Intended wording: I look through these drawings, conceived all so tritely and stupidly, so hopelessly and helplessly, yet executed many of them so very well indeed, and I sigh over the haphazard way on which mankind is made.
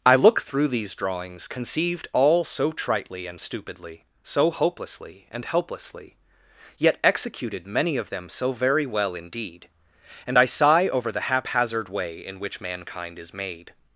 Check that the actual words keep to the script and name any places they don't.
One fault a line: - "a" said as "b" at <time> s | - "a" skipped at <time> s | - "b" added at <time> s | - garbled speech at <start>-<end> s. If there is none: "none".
- "on" said as "in" at 12.2 s